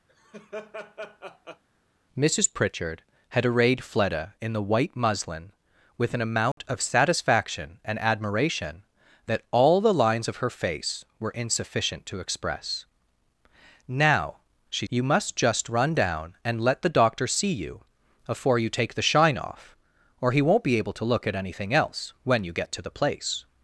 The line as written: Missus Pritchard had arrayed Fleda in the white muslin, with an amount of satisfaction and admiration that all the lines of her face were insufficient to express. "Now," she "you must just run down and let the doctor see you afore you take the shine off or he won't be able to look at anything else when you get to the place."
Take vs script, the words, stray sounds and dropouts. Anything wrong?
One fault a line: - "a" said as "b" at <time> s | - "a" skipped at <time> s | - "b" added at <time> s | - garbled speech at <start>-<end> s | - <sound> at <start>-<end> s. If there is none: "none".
- laugh at 0.1-1.6 s
- dropout at 6.5-6.6 s